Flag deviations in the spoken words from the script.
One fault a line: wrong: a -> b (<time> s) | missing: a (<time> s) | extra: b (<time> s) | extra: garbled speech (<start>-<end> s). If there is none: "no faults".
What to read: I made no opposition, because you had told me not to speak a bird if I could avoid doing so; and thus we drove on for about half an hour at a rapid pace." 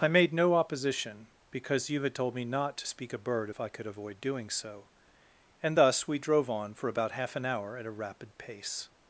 no faults